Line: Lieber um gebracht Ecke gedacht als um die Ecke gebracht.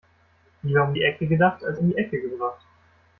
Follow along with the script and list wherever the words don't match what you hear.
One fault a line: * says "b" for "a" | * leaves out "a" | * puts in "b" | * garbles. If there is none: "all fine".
* says "die" for "gebracht"